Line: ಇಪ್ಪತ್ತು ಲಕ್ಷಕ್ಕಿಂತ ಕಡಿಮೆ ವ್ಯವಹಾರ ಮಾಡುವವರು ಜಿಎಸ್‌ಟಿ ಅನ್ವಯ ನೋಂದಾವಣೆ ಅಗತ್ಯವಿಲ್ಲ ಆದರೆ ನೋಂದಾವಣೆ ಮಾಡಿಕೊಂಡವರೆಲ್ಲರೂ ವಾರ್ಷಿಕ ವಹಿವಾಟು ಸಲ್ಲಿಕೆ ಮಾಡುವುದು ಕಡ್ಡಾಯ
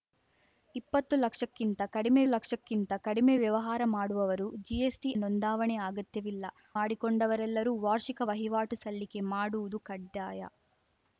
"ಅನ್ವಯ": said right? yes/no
no